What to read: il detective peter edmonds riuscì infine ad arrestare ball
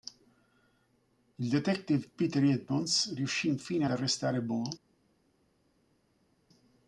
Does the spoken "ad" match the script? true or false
false